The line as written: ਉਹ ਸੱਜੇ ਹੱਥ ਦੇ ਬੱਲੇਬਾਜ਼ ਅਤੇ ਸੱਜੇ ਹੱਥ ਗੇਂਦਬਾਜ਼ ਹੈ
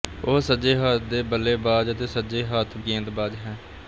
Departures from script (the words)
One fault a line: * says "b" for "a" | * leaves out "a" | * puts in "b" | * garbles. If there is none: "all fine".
all fine